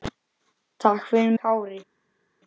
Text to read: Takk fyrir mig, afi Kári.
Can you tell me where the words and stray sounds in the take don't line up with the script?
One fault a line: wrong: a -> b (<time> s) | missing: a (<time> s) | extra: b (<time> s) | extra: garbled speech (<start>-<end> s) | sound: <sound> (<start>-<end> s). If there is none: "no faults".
missing: mig afi (1.3 s)